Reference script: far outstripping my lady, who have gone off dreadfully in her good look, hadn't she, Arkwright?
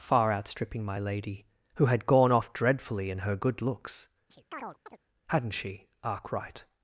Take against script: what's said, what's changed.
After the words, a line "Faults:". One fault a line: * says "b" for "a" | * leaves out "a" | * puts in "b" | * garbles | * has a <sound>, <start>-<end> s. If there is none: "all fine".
far outstripping my lady, who had gone off dreadfully in her good looks, hadn't she, Arkwright?
Faults:
* says "had" for "have"
* says "looks" for "look"
* has a chirp, 4.3-5.0 s